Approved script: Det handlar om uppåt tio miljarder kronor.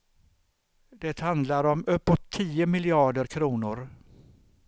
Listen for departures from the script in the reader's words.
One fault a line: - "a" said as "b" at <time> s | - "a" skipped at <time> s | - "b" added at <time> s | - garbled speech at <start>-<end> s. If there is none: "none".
none